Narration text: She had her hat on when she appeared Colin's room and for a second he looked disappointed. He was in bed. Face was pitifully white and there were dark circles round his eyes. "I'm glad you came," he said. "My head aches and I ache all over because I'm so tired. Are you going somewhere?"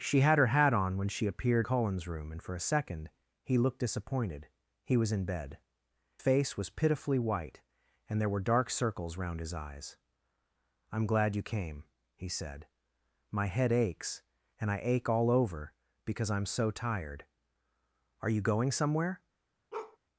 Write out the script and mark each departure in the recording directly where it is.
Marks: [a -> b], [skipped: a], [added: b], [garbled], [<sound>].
She had her hat on when she appeared Colin's room and for a second he looked disappointed. He was in bed. Face was pitifully white and there were dark circles round his eyes. "I'm glad you came," he said. "My head aches and I ache all over because I'm so tired. Are you going somewhere?" [bark]